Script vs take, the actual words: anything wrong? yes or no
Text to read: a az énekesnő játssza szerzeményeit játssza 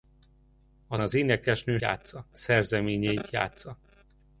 no